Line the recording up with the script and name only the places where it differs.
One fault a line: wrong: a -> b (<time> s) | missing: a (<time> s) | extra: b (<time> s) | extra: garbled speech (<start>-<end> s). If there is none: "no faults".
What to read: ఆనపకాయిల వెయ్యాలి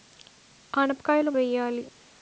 no faults